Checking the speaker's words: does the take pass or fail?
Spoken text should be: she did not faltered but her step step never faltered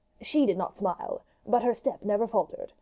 fail